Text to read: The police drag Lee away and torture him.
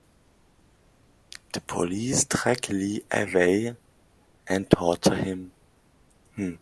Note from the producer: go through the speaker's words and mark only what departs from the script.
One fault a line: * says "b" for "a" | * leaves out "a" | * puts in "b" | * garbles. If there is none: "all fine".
all fine